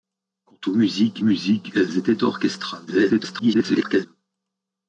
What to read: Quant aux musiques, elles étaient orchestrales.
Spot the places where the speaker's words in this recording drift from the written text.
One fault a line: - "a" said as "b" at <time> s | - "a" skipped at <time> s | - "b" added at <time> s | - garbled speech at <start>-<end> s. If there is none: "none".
- "musiques" added at 1.2 s
- garbled speech at 2.9-4.1 s